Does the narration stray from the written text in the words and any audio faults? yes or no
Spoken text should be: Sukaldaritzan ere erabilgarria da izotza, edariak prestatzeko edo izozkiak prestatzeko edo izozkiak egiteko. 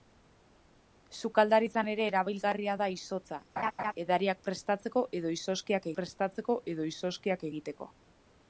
yes